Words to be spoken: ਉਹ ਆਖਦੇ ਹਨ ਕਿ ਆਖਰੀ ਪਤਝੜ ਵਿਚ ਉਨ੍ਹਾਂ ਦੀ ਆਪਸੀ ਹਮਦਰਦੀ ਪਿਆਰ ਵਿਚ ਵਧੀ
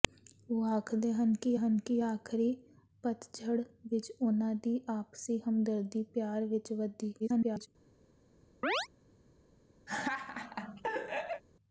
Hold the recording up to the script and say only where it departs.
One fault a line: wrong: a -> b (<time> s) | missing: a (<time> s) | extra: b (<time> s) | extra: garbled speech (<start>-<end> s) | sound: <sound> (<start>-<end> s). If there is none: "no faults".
extra: ਹਨ ਕਿ (1.6 s)
extra: garbled speech (7.2-7.7 s)
sound: chirp (8.6-8.9 s)
sound: laugh (9.9-11.4 s)